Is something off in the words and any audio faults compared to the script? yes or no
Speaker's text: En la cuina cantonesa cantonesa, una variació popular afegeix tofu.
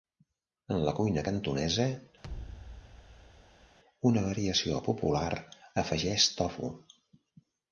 yes